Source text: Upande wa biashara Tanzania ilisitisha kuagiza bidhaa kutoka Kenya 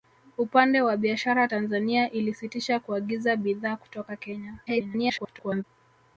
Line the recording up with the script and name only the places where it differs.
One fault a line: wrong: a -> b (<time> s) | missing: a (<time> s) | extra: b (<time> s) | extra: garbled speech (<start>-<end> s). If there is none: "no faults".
extra: garbled speech (4.7-5.6 s)